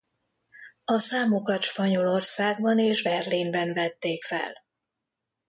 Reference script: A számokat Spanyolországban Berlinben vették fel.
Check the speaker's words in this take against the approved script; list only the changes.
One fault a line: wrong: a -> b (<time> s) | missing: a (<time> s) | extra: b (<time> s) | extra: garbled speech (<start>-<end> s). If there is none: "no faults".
extra: és (2.8 s)